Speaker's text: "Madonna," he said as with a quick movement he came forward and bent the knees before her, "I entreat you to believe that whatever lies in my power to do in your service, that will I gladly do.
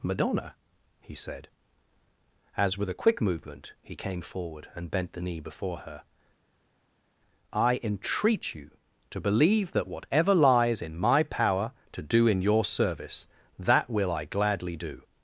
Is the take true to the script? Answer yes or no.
no